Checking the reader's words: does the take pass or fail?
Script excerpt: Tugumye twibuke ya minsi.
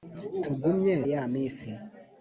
fail